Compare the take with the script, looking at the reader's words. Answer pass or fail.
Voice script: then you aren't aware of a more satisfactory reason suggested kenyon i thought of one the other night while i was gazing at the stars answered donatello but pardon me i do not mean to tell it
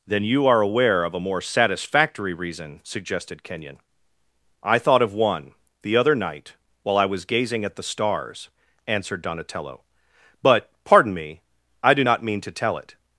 fail